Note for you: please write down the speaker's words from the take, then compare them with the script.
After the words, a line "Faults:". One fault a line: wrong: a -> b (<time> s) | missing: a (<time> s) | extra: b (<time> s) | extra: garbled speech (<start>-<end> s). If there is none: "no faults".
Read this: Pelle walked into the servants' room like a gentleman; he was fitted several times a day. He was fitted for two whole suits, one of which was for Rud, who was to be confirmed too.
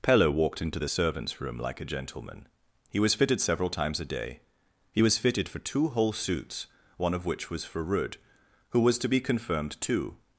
Pelle walked into the servants' room like a gentleman; he was fitted several times a day. He was fitted for two whole suits, one of which was for Rud, who was to be confirmed too.
Faults:
no faults